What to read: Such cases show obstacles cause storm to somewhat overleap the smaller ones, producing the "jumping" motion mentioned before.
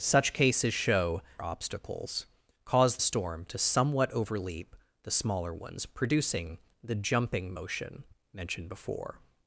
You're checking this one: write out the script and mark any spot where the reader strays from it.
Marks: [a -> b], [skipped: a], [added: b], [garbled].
Such cases show obstacles cause storm to somewhat overleap the smaller ones, producing the "jumping" motion mentioned before.